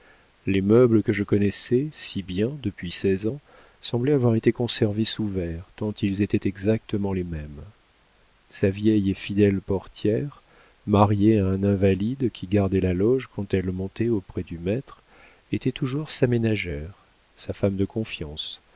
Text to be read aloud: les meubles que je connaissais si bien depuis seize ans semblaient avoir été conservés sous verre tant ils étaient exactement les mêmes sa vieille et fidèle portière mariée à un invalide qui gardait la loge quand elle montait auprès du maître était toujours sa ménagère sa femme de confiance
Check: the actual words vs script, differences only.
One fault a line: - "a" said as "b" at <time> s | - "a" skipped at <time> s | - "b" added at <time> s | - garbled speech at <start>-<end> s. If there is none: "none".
none